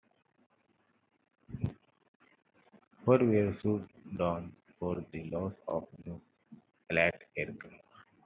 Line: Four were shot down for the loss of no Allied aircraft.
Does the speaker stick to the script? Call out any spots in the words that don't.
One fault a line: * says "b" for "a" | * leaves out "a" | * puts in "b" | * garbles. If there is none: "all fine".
all fine